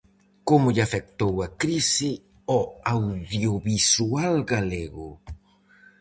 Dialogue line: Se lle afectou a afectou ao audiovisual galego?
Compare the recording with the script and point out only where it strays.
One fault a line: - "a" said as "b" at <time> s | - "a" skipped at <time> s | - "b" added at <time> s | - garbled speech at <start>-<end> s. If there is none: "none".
- "Se" said as "Como" at 0.5 s
- "afectou" said as "crise" at 1.6 s